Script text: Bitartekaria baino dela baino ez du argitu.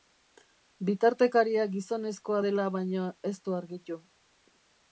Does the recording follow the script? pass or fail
fail